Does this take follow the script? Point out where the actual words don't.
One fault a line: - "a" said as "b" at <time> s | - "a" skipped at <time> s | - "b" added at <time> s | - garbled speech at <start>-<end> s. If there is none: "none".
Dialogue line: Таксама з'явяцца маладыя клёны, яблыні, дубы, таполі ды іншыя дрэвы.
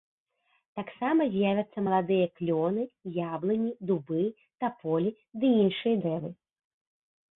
none